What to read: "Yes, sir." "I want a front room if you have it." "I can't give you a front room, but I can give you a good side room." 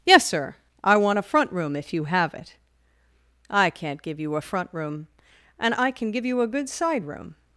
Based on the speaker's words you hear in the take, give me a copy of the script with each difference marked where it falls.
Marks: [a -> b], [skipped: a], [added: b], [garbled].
"Yes, sir." "I want a front room if you have it." "I can't give you a front room, [but -> and] I can give you a good side room."